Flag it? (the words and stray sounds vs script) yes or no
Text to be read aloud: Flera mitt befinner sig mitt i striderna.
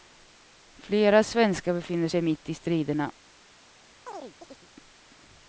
yes